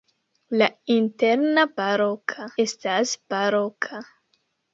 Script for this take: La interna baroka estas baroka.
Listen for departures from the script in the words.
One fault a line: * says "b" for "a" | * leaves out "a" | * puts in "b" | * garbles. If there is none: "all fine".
all fine